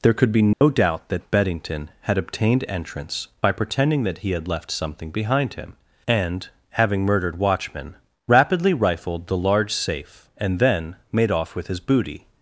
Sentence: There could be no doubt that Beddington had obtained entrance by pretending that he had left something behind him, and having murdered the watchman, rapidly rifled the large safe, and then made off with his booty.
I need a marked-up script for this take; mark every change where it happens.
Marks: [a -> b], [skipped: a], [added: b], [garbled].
There could be no doubt that Beddington had obtained entrance by pretending that he had left something behind him, and having murdered [skipped: the] watchman, rapidly rifled the large safe, and then made off with his booty.